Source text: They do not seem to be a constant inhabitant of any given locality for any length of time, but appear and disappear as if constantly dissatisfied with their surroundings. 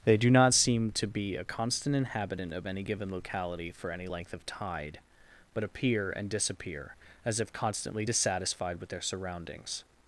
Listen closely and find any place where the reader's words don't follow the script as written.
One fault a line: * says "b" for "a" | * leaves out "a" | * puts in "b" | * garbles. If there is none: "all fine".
* says "tide" for "time"